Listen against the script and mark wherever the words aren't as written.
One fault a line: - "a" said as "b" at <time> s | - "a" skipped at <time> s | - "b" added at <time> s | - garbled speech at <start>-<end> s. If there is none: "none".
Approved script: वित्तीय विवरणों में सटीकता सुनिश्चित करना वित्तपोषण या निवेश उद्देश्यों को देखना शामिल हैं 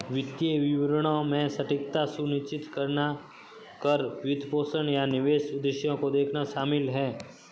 - "कर" added at 3.8 s